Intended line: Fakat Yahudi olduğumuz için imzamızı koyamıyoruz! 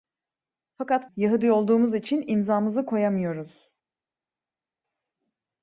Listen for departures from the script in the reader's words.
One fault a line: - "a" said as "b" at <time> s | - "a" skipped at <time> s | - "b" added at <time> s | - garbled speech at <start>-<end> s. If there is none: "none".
none